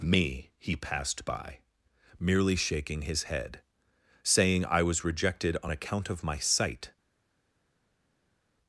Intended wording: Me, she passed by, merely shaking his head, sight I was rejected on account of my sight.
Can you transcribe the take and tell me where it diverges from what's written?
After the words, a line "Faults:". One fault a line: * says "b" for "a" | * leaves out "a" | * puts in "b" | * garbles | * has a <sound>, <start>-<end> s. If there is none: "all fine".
Me, he passed by, merely shaking his head, saying I was rejected on account of my sight.
Faults:
* says "he" for "she"
* says "saying" for "sight"